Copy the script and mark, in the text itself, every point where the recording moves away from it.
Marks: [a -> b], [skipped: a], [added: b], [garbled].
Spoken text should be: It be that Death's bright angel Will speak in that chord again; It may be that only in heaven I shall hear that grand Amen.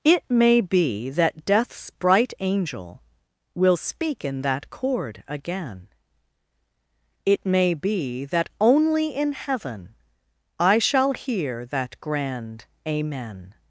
It [added: may] be that Death's bright angel Will speak in that chord again; It may be that only in heaven I shall hear that grand Amen.